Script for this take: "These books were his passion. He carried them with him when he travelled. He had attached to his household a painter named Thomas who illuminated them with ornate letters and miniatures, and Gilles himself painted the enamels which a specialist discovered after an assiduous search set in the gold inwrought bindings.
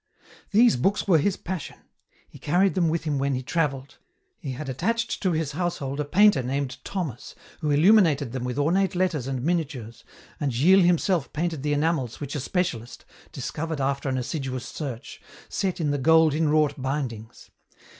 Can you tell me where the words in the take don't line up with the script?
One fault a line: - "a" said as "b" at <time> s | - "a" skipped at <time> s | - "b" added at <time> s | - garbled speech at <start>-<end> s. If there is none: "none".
none